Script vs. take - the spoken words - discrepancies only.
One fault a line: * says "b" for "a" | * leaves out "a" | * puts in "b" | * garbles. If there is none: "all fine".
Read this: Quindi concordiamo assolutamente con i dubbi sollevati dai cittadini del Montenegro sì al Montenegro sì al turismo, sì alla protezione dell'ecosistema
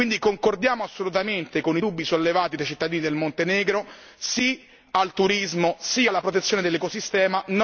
* leaves out "Montenegro sì al"